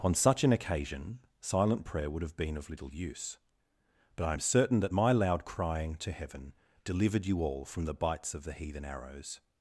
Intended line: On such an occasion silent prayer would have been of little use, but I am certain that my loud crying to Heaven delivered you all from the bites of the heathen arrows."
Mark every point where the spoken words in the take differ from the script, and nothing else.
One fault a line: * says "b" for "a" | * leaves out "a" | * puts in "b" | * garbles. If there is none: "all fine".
all fine